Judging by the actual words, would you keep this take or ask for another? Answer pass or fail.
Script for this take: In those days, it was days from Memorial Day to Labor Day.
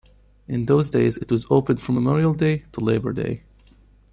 fail